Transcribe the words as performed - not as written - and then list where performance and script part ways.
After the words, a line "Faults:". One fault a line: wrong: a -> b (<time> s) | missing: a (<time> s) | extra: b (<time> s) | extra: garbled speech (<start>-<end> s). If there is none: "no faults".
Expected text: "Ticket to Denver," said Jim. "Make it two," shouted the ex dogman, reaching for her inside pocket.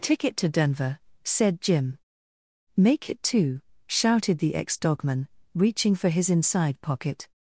"Ticket to Denver," said Jim. "Make it two," shouted the ex dogman, reaching for his inside pocket.
Faults:
wrong: her -> his (6.1 s)